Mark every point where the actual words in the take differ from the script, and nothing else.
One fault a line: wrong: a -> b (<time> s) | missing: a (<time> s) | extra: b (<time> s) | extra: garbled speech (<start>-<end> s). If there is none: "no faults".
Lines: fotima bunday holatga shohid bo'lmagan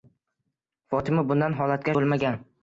missing: shohid (1.9 s)